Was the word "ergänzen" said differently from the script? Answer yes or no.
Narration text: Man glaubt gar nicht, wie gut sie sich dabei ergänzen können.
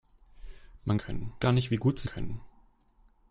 yes